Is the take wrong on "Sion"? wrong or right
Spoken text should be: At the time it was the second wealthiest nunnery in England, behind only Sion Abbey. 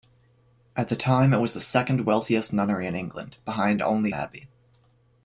wrong